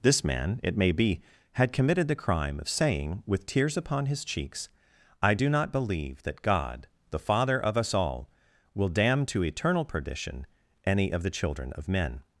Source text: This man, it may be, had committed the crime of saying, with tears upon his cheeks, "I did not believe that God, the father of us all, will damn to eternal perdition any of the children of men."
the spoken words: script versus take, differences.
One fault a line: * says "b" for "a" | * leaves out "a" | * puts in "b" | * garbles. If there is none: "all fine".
* says "do" for "did"